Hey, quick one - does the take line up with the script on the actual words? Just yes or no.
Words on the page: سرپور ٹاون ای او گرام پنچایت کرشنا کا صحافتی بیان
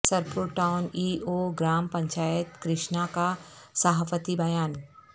yes